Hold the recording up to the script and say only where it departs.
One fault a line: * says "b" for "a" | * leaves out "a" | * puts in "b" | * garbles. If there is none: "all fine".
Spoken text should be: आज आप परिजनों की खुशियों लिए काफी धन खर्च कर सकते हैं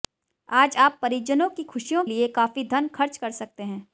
all fine